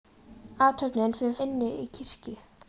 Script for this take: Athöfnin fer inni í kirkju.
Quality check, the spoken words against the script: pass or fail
pass